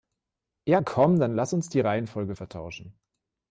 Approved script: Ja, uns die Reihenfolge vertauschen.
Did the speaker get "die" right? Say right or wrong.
right